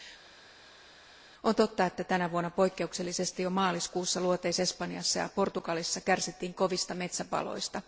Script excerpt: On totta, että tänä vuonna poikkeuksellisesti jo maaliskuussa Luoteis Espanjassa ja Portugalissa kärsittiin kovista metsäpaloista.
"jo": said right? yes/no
yes